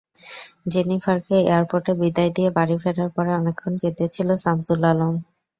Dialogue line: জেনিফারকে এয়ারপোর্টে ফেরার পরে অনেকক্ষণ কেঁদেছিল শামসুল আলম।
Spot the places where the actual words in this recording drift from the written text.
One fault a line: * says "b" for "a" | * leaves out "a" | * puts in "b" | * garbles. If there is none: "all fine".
* puts in "বিদায় দিয়ে বাড়ি"